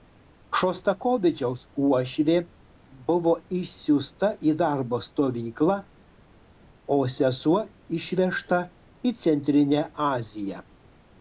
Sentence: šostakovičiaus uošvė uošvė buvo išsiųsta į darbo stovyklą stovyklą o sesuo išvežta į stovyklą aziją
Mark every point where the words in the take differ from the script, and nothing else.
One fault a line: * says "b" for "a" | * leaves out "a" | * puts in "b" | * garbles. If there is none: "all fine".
* leaves out "uošvė"
* leaves out "stovyklą"
* says "centrinę" for "stovyklą"